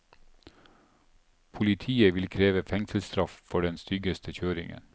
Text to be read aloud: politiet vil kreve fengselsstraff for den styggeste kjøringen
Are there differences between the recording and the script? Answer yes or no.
no